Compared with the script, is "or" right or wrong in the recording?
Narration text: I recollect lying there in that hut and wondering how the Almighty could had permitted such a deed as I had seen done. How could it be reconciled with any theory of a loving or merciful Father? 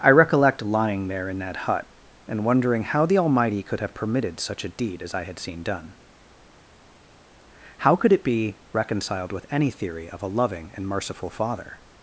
wrong